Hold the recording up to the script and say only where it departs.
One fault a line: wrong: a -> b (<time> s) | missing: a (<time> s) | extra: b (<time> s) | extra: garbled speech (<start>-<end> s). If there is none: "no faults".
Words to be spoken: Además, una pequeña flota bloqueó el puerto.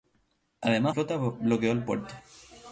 missing: una pequeña (0.9 s)